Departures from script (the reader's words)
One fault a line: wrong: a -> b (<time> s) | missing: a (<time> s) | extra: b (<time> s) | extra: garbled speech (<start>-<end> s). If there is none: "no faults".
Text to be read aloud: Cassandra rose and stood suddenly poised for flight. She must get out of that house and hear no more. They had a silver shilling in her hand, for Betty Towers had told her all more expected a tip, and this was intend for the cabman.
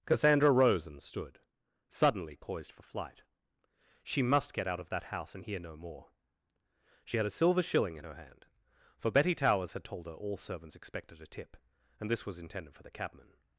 wrong: They -> She (7.0 s)
wrong: more -> servants (10.4 s)
wrong: intend -> intended (12.4 s)